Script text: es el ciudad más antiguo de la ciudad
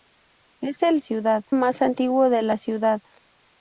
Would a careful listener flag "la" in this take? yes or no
no